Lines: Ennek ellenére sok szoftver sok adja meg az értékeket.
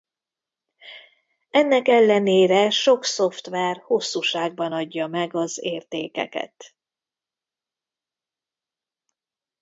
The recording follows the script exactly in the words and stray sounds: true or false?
false